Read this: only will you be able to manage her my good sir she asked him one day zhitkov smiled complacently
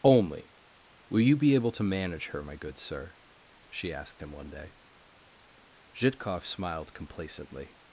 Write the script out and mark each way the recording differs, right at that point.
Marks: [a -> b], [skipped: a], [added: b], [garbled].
only will you be able to manage her my good sir she asked him one day zhitkov smiled complacently